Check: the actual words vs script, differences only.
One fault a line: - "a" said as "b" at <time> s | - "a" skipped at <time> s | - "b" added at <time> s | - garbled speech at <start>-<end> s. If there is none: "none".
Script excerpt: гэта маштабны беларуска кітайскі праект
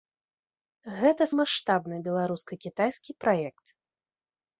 none